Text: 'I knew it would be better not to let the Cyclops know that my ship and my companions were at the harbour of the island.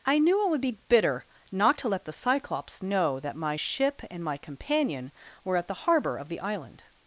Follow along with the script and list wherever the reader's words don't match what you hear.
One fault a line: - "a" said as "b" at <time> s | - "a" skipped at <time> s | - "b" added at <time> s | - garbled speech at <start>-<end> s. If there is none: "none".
- "better" said as "bitter" at 0.9 s
- "companions" said as "companion" at 4.4 s